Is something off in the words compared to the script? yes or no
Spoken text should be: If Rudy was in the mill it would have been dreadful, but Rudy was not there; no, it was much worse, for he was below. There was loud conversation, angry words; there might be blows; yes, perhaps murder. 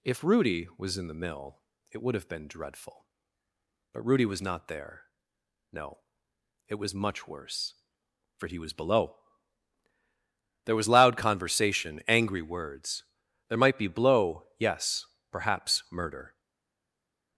yes